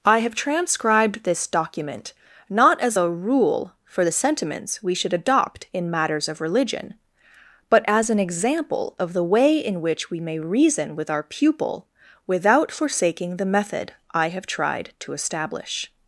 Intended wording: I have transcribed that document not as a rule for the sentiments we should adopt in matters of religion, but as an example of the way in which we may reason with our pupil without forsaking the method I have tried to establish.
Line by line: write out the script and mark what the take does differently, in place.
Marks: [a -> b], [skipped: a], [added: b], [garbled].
I have transcribed [that -> this] document not as a rule for the sentiments we should adopt in matters of religion, but as an example of the way in which we may reason with our pupil without forsaking the method I have tried to establish.